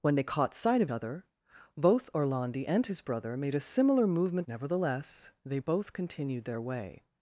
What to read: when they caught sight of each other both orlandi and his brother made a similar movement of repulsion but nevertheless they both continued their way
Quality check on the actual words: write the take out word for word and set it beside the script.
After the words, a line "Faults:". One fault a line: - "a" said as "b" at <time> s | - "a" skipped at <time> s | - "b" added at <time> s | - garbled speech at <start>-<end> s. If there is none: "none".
when they caught sight of other both orlandi and his brother made a similar movement nevertheless they both continued their way
Faults:
- "each" skipped at 0.9 s
- "of repulsion but" skipped at 4.5 s